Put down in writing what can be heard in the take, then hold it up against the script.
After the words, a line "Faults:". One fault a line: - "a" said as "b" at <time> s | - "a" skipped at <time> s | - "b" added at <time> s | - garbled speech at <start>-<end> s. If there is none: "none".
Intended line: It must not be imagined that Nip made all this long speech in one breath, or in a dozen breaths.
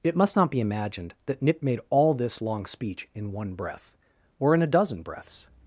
It must not be imagined that Nip made all this long speech in one breath, or in a dozen breaths.
Faults:
none